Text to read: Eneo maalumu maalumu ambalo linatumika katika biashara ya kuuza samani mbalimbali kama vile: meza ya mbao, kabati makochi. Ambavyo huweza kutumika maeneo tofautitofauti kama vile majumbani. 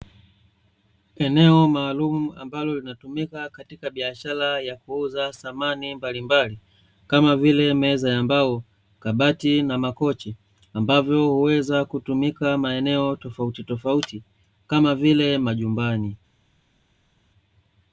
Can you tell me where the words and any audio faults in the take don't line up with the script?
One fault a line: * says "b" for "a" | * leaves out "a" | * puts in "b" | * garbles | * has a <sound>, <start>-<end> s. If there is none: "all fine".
* leaves out "maalumu"
* puts in "na"